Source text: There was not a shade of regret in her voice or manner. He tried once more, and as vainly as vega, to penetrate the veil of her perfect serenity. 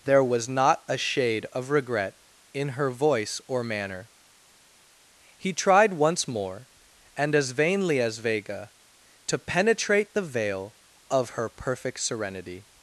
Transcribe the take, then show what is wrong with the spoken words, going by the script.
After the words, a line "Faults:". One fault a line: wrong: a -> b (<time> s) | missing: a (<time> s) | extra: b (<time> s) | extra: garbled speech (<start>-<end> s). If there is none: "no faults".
There was not a shade of regret in her voice or manner. He tried once more, and as vainly as vega, to penetrate the veil of her perfect serenity.
Faults:
no faults